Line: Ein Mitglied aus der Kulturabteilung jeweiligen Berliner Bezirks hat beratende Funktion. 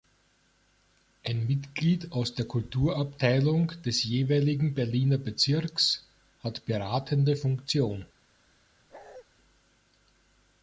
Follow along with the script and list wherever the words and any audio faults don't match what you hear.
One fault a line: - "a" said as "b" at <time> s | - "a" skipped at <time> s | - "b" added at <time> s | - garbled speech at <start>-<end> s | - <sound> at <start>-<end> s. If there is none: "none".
- "des" added at 3.9 s
- bark at 8.9-9.2 s